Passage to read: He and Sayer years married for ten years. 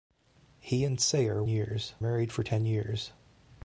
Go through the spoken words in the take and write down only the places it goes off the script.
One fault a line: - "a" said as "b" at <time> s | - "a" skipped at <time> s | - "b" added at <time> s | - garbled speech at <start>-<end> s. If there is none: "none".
none